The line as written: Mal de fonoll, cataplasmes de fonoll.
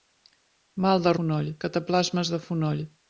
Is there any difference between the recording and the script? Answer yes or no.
no